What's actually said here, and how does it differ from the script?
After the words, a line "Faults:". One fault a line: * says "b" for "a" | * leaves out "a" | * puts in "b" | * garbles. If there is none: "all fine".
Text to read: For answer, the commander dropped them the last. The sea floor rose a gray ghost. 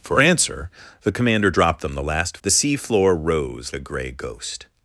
For answer, the commander dropped them the last. The sea floor rose a gray ghost.
Faults:
all fine